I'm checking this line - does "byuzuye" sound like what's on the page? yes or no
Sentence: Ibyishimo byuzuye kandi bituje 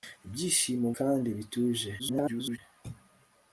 no